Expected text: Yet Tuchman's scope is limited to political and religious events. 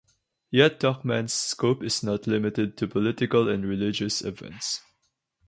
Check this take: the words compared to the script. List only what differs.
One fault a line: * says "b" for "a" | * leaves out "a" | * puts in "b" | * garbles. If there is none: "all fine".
* puts in "not"